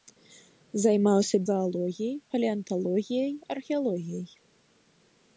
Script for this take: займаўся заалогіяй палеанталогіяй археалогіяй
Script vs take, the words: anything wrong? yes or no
no